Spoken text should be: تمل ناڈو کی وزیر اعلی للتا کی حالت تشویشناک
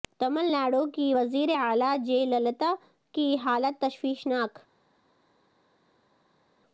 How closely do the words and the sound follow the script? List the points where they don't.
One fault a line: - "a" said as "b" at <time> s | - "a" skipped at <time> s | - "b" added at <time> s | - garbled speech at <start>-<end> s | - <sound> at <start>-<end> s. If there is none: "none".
- "جے" added at 2.1 s